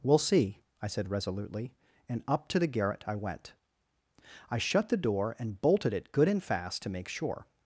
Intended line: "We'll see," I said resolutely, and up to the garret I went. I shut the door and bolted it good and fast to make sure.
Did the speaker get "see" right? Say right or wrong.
right